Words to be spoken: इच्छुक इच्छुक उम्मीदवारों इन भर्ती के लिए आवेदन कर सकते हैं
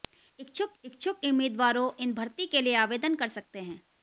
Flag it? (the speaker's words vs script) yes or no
no